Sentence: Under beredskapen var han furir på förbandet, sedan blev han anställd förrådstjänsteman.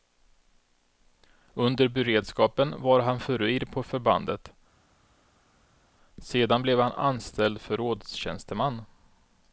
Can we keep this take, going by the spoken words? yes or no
yes